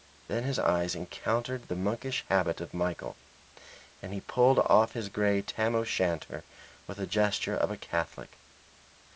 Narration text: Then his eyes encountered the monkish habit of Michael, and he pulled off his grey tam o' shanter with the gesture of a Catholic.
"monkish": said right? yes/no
yes